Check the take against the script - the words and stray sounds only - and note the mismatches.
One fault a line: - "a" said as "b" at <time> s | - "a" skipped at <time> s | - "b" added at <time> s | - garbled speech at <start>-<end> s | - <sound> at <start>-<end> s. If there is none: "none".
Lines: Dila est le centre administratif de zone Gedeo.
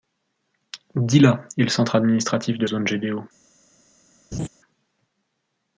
- laugh at 4.3-4.5 s